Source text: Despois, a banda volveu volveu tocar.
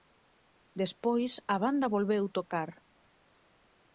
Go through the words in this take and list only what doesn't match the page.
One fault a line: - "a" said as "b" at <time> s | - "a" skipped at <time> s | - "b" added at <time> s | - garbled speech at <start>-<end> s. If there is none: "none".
- "volveu" skipped at 2.2 s